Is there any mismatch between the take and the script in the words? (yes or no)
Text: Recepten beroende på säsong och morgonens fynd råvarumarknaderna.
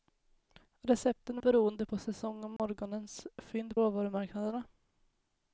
no